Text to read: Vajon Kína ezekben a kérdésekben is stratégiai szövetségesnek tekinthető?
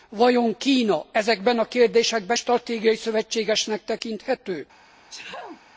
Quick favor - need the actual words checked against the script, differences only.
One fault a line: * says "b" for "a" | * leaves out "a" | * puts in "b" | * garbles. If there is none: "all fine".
* leaves out "is"